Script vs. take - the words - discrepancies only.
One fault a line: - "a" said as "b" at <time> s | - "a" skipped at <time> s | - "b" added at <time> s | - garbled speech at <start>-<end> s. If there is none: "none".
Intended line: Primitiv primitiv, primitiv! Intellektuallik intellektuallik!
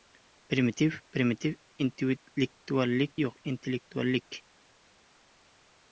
- "primitiv Intellektuallik" said as "Intellektuallik yo‘q" at 1.9 s